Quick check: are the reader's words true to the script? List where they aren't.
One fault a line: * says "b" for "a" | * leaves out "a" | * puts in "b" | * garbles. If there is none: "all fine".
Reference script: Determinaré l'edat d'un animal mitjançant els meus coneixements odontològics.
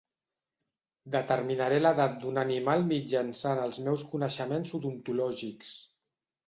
all fine